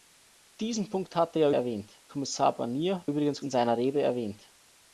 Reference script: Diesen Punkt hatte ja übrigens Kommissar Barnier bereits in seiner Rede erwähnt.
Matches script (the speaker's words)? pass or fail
fail